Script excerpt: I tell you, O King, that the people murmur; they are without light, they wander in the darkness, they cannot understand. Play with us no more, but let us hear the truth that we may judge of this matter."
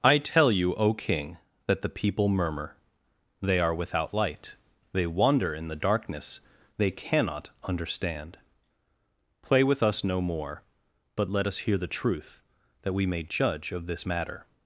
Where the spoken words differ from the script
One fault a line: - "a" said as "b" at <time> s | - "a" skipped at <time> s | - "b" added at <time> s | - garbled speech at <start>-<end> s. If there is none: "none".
none